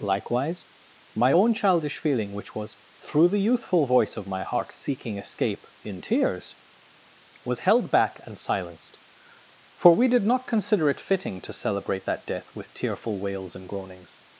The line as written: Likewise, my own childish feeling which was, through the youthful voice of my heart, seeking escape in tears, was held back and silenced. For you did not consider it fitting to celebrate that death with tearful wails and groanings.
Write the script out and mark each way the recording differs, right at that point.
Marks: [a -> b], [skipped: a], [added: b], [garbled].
Likewise, my own childish feeling which was, through the youthful voice of my heart, seeking escape in tears, was held back and silenced. For [you -> we] did not consider it fitting to celebrate that death with tearful wails and groanings.